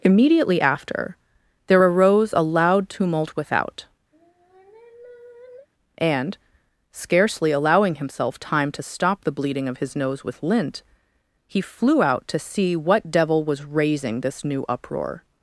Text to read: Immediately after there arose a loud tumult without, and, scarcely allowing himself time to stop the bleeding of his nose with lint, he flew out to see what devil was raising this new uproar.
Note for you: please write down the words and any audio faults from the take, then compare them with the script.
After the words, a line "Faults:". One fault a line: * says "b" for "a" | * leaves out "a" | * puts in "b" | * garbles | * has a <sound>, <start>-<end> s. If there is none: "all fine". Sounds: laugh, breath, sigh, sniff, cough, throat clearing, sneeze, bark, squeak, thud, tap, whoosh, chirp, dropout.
Immediately after there arose a loud tumult without, and, scarcely allowing himself time to stop the bleeding of his nose with lint, he flew out to see what devil was raising this new uproar.
Faults:
* has a sigh, 4.1-5.7 s